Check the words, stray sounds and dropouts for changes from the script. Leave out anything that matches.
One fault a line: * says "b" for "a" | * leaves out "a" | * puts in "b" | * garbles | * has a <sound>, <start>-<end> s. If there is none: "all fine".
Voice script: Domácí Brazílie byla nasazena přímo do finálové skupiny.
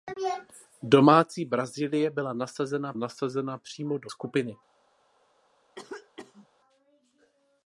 * puts in "nasazena"
* leaves out "finálové"
* has a cough, 5.7-6.5 s